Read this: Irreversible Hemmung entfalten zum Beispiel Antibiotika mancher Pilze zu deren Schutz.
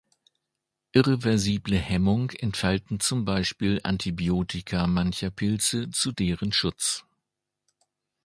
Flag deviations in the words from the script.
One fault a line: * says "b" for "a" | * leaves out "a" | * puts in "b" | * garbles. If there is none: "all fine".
all fine